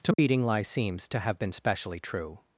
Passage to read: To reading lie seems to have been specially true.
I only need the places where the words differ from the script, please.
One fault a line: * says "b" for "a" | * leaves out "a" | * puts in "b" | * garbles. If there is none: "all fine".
all fine